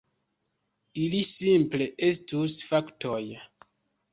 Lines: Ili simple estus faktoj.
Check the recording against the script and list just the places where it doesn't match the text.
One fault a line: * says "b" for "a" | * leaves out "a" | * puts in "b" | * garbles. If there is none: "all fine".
all fine